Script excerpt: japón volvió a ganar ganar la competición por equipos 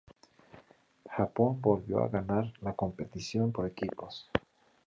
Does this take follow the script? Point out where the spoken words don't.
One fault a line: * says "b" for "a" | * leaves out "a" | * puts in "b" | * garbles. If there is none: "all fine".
* leaves out "ganar"